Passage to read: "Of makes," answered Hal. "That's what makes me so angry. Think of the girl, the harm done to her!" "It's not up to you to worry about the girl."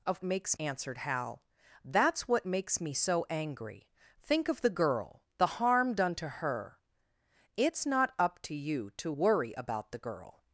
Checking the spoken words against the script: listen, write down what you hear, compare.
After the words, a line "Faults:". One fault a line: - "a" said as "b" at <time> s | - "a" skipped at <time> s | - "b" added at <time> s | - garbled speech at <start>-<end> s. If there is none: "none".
"Of makes," answered Hal. "That's what makes me so angry. Think of the girl, the harm done to her!" "It's not up to you to worry about the girl."
Faults:
none